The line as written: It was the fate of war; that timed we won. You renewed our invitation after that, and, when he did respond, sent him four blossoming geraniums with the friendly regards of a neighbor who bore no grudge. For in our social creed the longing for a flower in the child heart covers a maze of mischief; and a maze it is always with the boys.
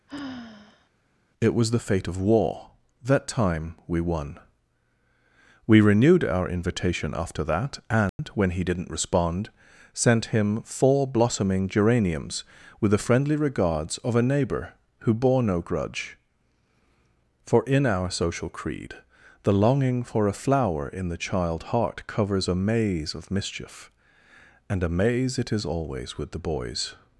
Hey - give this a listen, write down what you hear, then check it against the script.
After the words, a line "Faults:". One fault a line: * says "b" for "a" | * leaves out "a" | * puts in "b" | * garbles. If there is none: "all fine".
It was the fate of war; that time we won. We renewed our invitation after that, and, when he didn't respond, sent him four blossoming geraniums with the friendly regards of a neighbor who bore no grudge. For in our social creed the longing for a flower in the child heart covers a maze of mischief; and a maze it is always with the boys.
Faults:
* says "time" for "timed"
* says "We" for "You"
* says "didn't" for "did"